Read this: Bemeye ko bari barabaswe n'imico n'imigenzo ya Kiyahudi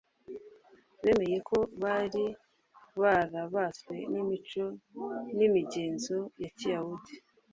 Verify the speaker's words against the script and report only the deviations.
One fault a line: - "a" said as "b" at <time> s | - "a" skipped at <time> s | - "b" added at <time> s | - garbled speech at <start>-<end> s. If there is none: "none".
none